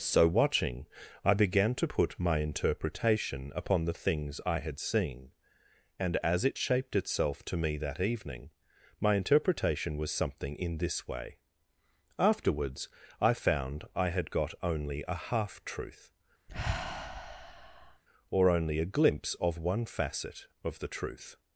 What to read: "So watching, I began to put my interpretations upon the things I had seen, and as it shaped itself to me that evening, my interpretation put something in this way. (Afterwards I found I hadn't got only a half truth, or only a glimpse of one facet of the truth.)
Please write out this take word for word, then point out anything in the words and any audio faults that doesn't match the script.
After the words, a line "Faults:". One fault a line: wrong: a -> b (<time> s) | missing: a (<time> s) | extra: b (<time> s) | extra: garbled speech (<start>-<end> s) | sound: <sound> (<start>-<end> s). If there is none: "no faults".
"So watching, I began to put my interpretation upon the things I had seen, and as it shaped itself to me that evening, my interpretation was something in this way. (Afterwards I found I had got only a half truth, or only a glimpse of one facet of the truth.)
Faults:
wrong: interpretations -> interpretation (2.4 s)
wrong: put -> was (10.0 s)
wrong: hadn't -> had (14.1 s)
sound: sigh (16.5-18.0 s)